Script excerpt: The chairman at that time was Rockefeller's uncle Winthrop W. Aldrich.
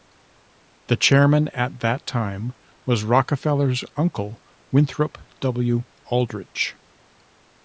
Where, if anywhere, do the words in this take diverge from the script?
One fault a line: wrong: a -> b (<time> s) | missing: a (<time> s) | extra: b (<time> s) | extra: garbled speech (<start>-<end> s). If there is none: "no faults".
no faults